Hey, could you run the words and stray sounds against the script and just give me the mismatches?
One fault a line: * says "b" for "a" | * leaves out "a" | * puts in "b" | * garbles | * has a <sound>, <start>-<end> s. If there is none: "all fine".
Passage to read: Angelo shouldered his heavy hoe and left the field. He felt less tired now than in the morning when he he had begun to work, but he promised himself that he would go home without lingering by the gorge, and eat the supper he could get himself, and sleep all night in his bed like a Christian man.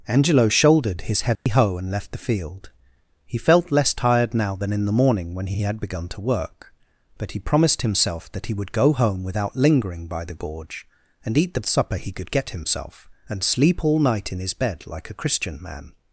* has a dropout, 1.4-1.5 s